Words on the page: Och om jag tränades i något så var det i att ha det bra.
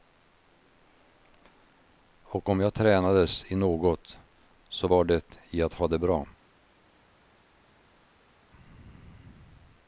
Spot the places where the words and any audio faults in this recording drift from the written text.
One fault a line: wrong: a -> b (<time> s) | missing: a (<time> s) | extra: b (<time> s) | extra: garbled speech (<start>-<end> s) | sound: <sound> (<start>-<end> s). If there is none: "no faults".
no faults